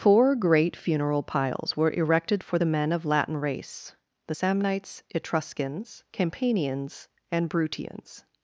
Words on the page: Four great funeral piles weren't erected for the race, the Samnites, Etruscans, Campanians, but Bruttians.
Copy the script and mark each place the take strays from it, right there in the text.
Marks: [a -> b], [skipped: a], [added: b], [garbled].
Four great funeral piles [weren't -> were] erected for the [added: men of Latin] race, the Samnites, Etruscans, Campanians, [but -> and] Bruttians.